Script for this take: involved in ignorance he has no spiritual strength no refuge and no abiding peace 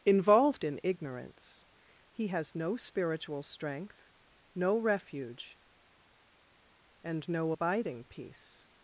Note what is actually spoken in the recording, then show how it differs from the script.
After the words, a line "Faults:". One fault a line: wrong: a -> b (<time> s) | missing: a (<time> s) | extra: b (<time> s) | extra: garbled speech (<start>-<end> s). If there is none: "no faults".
involved in ignorance he has no spiritual strength no refuge and no abiding peace
Faults:
no faults